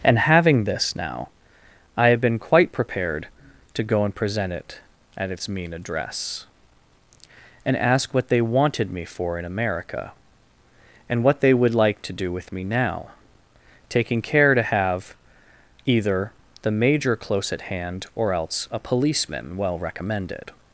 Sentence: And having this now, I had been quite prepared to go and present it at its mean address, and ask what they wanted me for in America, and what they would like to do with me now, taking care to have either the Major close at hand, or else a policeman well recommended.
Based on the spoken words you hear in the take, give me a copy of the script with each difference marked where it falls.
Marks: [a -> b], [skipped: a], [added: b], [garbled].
And having this now, I [had -> have] been quite prepared to go and present it at its mean address, and ask what they wanted me for in America, and what they would like to do with me now, taking care to have either the Major close at hand, or else a policeman well recommended.